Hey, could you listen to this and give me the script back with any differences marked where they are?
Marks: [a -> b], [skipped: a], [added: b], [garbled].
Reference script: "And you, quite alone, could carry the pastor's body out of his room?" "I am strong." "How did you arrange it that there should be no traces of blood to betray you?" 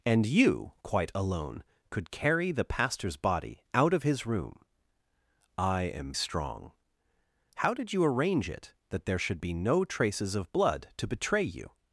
"And you, quite alone, could carry the pastor's body out of his room?" "I am strong." "How did you arrange it that there should be no traces of blood to betray you?"